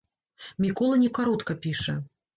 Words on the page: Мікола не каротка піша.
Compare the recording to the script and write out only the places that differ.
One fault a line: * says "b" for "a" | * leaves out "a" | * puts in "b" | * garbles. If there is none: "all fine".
all fine